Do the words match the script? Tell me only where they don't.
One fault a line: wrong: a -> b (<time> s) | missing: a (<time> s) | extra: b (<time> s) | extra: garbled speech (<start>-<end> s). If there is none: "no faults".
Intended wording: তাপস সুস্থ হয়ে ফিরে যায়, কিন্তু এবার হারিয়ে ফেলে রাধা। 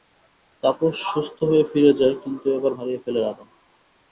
no faults